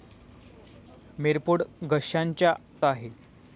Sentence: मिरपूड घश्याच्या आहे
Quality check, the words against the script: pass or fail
pass